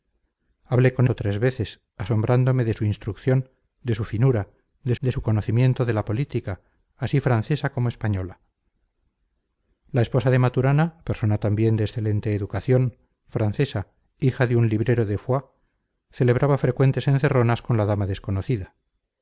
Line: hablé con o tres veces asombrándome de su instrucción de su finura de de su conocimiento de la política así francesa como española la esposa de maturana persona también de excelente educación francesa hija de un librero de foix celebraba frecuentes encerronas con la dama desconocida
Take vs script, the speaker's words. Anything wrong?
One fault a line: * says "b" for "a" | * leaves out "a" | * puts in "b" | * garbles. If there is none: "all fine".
all fine